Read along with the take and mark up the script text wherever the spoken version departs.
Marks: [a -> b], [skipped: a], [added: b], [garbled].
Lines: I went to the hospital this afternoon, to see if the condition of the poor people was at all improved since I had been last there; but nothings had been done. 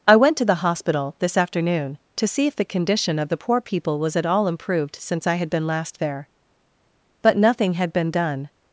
I went to the hospital this afternoon, to see if the condition of the poor people was at all improved since I had been last there; but [nothings -> nothing] had been done.